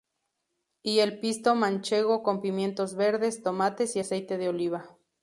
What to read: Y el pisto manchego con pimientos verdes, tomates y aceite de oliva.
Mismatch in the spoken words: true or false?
false